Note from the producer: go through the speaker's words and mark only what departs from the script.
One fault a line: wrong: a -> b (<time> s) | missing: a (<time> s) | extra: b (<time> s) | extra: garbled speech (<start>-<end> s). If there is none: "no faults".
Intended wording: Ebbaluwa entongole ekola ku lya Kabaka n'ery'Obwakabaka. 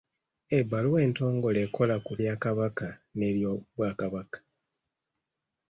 no faults